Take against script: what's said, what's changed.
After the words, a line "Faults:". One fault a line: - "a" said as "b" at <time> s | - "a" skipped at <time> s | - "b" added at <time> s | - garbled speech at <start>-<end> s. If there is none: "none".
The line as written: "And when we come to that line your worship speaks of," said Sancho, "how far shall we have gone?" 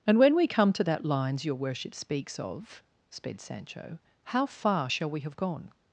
"And when we come to that lines your worship speaks of," sped Sancho, "how far shall we have gone?"
Faults:
- "line" said as "lines" at 1.1 s
- "said" said as "sped" at 3.1 s